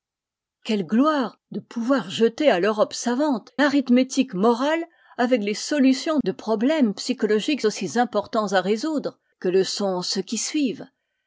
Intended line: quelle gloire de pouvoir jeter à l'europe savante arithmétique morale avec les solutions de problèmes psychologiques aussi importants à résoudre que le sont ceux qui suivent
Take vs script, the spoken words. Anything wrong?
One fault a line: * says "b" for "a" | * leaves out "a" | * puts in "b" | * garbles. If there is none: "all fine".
all fine